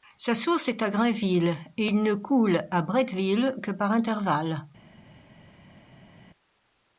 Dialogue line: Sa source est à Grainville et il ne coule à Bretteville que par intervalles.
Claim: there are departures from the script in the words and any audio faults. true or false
false